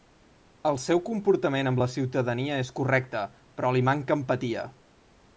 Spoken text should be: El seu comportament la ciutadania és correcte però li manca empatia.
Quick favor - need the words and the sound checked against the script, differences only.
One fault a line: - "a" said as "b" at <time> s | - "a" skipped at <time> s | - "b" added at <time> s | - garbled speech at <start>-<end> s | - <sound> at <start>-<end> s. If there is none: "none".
- "amb" added at 1.7 s